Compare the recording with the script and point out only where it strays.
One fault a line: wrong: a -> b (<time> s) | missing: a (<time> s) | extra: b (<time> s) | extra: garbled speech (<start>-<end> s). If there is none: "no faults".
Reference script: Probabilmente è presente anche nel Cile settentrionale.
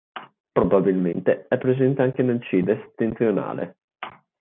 no faults